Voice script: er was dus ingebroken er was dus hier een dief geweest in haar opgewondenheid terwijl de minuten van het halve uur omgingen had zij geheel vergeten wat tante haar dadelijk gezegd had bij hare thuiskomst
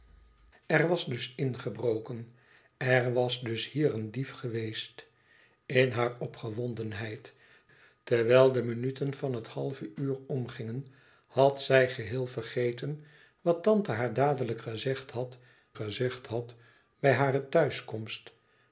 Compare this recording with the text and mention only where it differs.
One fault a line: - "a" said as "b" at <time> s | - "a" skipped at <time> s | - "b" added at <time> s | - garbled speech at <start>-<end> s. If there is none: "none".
- "gezegd had" added at 15.7 s